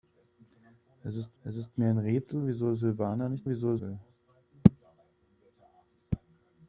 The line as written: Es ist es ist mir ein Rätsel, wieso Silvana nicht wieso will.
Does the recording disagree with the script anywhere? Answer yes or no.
no